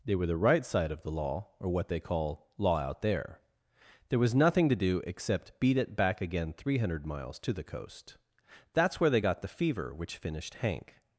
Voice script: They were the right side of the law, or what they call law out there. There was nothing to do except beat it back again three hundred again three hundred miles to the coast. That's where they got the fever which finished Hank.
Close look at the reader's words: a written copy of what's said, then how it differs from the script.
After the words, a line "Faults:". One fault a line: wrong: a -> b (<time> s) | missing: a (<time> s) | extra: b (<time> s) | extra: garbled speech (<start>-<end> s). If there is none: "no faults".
They were the right side of the law, or what they call law out there. There was nothing to do except beat it back again three hundred miles to the coast. That's where they got the fever which finished Hank.
Faults:
missing: again three hundred (7.0 s)